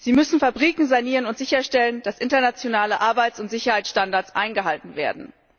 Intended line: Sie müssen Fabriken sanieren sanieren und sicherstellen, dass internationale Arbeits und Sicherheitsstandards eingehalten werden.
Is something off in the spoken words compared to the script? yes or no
yes